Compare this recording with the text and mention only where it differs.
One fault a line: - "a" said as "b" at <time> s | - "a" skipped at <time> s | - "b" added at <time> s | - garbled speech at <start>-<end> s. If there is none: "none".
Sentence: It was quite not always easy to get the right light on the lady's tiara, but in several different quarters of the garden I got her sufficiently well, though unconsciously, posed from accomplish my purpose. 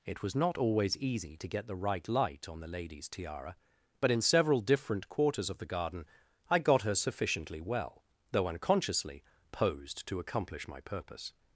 - "quite" skipped at 0.3 s
- "from" said as "to" at 10.1 s